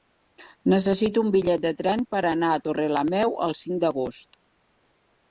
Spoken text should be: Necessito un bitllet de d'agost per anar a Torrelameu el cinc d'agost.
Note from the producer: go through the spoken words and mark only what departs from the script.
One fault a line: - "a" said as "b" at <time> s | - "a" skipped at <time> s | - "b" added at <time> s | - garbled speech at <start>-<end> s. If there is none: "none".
- "d'agost" said as "tren" at 1.8 s